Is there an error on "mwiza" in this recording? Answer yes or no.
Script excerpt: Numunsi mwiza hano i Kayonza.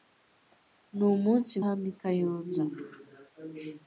yes